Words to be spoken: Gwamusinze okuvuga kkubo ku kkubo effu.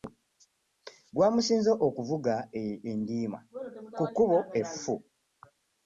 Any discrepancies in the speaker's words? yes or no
yes